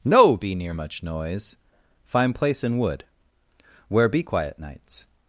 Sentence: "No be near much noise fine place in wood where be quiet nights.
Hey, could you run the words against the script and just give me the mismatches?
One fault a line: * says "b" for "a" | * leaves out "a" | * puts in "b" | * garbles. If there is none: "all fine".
all fine